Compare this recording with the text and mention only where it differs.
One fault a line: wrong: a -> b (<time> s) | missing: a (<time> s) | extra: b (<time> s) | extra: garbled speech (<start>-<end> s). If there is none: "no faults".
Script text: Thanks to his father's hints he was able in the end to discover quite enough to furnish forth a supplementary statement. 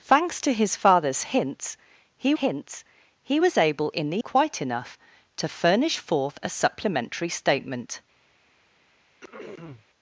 extra: hints he (2.3 s)
missing: end to discover (4.2 s)